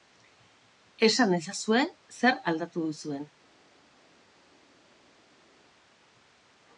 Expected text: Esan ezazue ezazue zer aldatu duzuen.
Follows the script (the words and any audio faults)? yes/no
no